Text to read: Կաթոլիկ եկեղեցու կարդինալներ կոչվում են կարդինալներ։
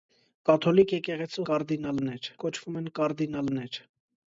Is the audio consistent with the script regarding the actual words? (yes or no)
yes